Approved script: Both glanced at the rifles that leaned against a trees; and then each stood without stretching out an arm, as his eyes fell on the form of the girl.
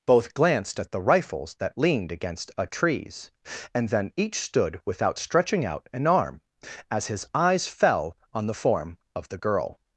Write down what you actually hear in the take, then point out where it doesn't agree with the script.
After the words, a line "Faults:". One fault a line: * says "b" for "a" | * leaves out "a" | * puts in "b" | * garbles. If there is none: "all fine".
Both glanced at the rifles that leaned against a trees; and then each stood without stretching out an arm, as his eyes fell on the form of the girl.
Faults:
all fine